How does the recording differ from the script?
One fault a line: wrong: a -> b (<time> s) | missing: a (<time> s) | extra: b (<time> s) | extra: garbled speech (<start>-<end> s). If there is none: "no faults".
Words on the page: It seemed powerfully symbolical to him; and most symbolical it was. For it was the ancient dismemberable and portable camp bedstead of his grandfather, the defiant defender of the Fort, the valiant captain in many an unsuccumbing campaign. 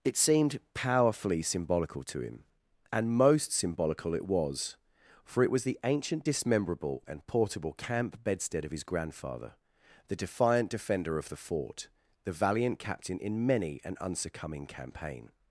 no faults